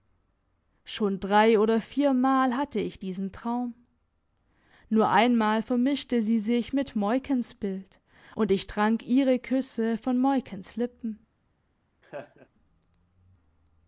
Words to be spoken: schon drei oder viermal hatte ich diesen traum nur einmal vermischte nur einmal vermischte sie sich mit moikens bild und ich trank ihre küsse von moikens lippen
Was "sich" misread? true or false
false